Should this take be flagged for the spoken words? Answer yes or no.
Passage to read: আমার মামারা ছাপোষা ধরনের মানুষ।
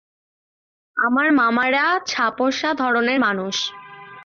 no